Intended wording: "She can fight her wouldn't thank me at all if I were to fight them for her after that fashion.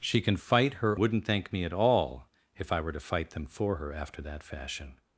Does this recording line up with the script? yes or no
yes